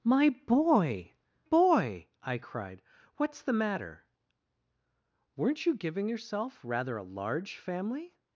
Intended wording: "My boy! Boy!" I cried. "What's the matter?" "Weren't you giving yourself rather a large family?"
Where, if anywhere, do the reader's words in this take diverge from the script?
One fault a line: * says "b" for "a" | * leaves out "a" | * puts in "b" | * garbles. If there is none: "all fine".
all fine